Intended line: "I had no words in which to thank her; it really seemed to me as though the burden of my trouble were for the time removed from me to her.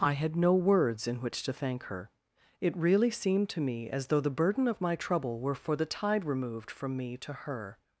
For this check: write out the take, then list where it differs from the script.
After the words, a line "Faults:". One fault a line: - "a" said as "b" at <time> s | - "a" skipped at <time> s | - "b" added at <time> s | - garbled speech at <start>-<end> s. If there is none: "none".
"I had no words in which to thank her; it really seemed to me as though the burden of my trouble were for the tide removed from me to her.
Faults:
- "time" said as "tide" at 5.8 s